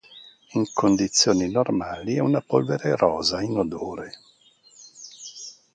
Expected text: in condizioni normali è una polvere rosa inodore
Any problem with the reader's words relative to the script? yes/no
no